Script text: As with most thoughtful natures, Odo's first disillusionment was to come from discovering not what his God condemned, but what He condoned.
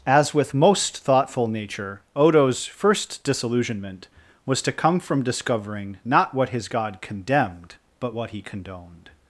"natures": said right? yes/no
no